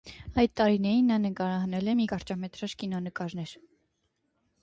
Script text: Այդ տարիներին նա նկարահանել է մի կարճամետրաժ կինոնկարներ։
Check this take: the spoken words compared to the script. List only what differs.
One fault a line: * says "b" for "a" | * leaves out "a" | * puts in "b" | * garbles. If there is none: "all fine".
all fine